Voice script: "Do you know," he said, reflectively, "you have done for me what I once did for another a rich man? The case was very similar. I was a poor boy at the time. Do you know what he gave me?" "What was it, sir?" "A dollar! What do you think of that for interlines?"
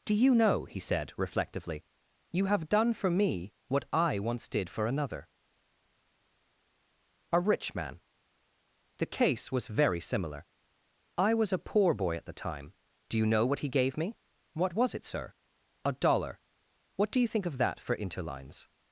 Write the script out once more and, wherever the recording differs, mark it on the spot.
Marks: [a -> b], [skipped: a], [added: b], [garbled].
"Do you know," he said, reflectively, "you have done for me what I once did for another a rich man? The case was very similar. I was a poor boy at the time. Do you know what he gave me?" "What was it, sir?" "A dollar! What do you think of that for interlines?"